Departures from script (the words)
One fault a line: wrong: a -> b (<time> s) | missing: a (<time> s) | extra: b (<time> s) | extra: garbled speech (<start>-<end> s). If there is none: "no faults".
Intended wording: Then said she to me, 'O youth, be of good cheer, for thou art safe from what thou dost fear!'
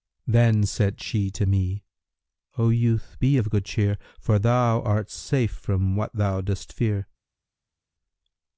no faults